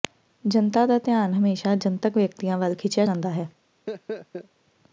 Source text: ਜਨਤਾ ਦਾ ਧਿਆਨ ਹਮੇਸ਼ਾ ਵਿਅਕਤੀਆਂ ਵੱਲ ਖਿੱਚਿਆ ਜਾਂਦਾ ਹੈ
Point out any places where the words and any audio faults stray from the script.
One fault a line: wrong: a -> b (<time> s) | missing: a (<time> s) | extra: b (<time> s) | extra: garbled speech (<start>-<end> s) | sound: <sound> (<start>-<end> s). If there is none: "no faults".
extra: ਜਨਤਕ (1.8 s)
sound: laugh (3.9-4.5 s)